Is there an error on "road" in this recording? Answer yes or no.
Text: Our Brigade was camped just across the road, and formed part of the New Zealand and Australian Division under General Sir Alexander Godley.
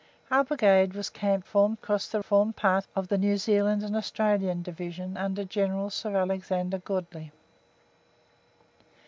yes